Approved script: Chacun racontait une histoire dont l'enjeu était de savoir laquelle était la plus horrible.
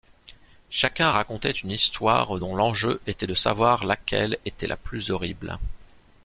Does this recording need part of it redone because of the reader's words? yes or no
no